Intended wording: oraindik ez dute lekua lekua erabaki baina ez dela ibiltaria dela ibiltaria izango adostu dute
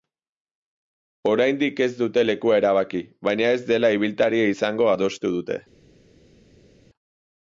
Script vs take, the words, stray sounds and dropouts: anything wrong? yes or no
yes